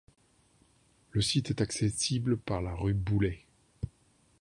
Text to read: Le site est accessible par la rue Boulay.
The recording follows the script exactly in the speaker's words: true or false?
true